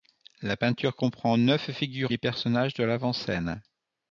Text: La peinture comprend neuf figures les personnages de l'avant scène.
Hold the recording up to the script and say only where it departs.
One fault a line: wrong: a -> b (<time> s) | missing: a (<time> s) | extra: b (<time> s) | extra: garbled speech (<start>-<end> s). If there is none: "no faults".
no faults